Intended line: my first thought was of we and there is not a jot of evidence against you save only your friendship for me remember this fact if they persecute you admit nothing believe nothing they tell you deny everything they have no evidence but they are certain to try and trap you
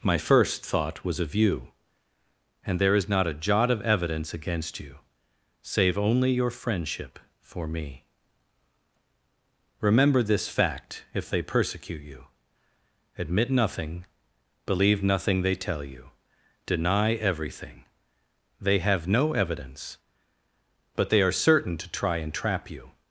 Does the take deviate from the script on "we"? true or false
true